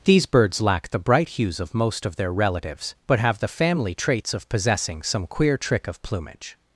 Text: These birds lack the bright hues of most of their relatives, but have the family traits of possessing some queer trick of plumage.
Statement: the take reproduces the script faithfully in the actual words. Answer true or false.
true